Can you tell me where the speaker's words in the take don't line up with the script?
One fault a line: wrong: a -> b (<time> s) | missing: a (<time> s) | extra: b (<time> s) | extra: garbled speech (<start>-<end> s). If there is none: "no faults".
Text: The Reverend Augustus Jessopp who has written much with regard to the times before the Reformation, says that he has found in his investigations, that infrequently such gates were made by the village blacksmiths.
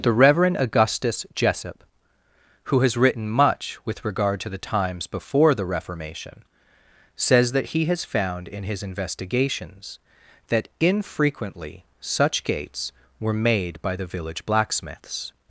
no faults